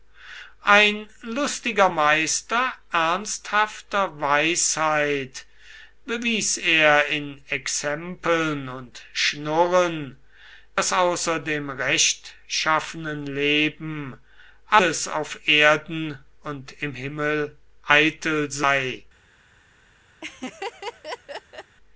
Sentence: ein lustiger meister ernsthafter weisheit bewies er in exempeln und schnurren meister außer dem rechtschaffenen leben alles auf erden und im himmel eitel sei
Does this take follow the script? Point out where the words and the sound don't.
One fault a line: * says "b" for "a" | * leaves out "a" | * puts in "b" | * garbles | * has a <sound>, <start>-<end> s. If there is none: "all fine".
* says "daß" for "meister"
* has a laugh, 20.2-21.8 s